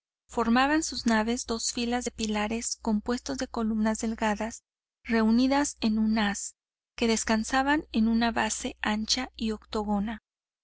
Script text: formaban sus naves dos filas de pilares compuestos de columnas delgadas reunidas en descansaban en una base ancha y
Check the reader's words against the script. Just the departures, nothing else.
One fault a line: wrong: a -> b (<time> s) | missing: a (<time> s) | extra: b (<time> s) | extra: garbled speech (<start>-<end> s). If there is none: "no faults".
extra: un haz que (6.0 s)